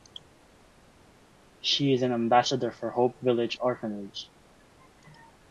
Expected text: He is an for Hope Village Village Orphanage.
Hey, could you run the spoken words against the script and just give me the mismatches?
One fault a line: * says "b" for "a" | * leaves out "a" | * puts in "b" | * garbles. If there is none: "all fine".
* says "She" for "He"
* puts in "ambassador"
* leaves out "Village"